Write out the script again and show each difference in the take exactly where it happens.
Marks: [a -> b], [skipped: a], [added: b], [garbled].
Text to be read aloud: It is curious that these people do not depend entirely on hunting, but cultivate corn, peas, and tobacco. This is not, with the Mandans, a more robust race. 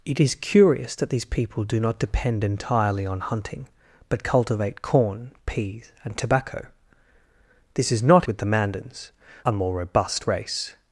It is curious that these people do not depend entirely on hunting, but cultivate corn, peas, and tobacco. This is not, with the Mandans, a more robust race.